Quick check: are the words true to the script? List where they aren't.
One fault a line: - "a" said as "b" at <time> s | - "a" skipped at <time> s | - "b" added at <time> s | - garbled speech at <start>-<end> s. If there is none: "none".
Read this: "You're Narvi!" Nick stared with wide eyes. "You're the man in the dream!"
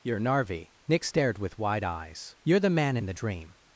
none